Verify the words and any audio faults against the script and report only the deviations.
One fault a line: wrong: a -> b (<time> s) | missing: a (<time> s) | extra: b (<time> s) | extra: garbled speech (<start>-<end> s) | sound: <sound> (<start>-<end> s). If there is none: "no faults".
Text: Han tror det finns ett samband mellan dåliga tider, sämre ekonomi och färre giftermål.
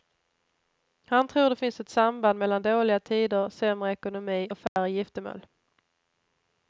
sound: dropout (4.7-4.8 s)